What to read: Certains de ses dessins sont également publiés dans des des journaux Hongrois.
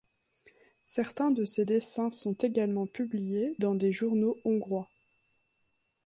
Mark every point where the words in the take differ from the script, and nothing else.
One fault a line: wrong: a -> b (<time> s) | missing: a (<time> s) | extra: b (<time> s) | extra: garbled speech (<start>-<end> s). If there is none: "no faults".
missing: des (3.9 s)